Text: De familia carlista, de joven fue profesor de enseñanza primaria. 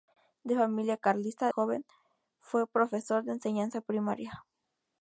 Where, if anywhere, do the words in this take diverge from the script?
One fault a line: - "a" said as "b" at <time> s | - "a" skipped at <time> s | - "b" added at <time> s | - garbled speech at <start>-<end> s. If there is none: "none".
- "de" skipped at 1.5 s